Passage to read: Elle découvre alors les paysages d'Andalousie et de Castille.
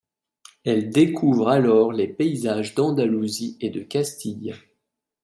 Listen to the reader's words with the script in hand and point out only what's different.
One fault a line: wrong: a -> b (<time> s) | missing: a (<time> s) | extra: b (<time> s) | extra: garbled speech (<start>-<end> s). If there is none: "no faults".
no faults